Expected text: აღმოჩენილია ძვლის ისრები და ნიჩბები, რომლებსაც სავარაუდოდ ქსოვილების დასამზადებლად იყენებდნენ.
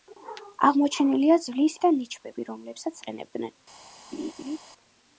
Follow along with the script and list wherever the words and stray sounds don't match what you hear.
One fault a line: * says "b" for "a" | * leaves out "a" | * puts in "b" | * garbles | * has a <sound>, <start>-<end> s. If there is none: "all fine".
* leaves out "ისრები"
* leaves out "სავარაუდოდ ქსოვილების დასამზადებლად"
* has a laugh, 4.1-4.6 s